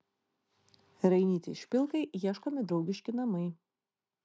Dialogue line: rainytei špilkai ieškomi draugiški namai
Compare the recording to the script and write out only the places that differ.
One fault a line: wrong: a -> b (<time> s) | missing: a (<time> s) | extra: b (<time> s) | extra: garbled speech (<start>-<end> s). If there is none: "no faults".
no faults